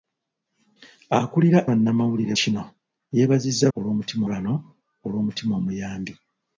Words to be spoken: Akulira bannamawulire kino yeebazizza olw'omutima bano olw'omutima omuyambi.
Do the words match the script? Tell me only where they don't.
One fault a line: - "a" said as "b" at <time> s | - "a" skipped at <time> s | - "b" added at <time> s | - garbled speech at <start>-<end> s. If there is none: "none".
none